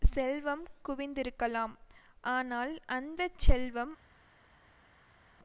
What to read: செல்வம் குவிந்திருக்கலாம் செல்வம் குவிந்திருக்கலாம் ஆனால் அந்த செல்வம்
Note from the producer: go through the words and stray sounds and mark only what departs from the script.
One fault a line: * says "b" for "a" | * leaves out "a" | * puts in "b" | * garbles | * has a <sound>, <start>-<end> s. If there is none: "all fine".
* leaves out "செல்வம் குவிந்திருக்கலாம்"